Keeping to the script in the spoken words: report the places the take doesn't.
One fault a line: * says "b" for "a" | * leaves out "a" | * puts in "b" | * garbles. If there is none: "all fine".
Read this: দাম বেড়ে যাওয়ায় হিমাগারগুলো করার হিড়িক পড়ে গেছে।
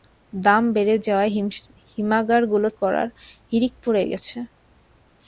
all fine